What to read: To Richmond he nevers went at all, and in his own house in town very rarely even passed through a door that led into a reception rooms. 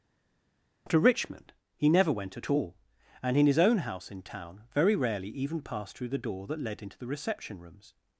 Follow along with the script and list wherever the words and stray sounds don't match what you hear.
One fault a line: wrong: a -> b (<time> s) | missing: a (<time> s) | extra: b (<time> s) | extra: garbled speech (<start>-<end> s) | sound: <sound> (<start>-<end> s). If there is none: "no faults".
wrong: nevers -> never (1.9 s)
wrong: a -> the (6.1 s)
wrong: a -> the (7.0 s)